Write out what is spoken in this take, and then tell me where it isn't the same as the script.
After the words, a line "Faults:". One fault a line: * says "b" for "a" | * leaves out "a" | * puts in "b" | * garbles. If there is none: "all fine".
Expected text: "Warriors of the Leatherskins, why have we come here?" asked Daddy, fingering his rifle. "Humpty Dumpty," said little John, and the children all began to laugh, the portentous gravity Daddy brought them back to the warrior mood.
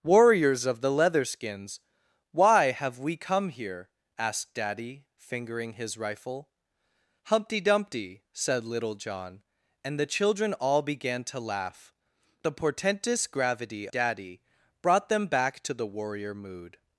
"Warriors of the Leatherskins, why have we come here?" asked Daddy, fingering his rifle. "Humpty Dumpty," said little John, and the children all began to laugh, the portentous gravity Daddy brought them back to the warrior mood.
Faults:
all fine